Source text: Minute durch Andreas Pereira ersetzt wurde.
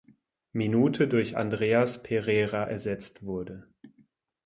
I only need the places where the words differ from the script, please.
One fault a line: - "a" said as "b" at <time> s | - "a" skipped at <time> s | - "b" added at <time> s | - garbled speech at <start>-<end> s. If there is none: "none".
none